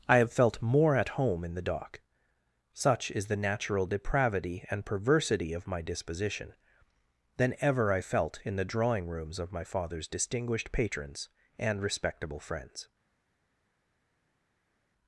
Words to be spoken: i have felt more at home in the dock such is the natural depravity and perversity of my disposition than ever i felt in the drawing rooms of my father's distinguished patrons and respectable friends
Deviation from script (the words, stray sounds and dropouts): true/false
false